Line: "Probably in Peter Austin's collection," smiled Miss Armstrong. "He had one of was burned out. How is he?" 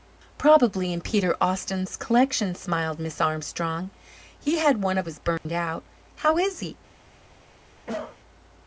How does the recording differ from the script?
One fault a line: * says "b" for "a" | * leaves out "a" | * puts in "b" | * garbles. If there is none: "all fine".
all fine